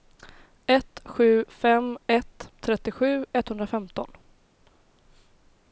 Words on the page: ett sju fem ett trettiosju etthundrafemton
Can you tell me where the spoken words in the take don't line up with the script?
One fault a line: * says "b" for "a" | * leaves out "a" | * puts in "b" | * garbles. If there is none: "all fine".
all fine